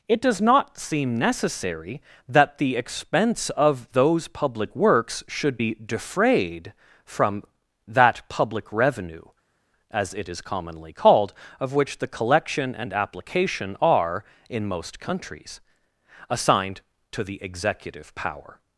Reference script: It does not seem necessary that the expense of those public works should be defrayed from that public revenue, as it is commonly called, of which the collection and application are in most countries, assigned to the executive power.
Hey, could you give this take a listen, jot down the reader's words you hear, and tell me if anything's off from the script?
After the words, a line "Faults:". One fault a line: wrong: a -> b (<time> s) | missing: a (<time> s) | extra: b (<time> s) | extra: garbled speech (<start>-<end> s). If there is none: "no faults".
It does not seem necessary that the expense of those public works should be defrayed from that public revenue, as it is commonly called, of which the collection and application are in most countries, assigned to the executive power.
Faults:
no faults